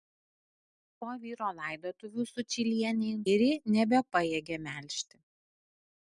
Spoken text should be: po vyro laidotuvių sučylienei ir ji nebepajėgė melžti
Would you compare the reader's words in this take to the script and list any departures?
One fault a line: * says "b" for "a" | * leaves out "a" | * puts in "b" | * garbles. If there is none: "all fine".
all fine